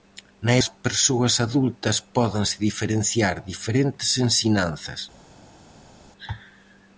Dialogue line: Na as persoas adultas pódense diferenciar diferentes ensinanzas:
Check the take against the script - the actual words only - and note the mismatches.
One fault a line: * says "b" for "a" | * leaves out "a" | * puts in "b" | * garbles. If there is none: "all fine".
all fine